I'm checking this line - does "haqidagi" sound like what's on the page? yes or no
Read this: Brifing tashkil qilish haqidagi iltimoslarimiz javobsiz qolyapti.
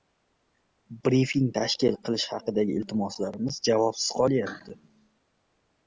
yes